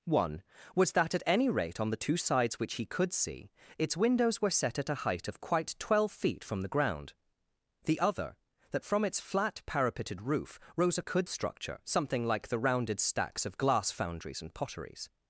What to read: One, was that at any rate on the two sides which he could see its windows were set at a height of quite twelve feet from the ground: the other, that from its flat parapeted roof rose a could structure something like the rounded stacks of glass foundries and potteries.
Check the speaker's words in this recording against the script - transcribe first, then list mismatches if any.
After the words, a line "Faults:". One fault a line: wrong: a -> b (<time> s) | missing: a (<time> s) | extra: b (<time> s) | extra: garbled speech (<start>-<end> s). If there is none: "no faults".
One, was that at any rate on the two sides which he could see its windows were set at a height of quite twelve feet from the ground: the other, that from its flat parapeted roof rose a could structure something like the rounded stacks of glass foundries and potteries.
Faults:
no faults